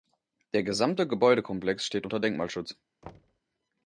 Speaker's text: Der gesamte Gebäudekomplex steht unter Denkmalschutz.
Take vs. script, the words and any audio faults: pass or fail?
fail